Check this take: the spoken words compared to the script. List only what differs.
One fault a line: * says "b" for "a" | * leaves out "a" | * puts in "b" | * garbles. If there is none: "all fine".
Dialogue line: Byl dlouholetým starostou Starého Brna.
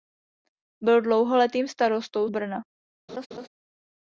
* leaves out "Starého"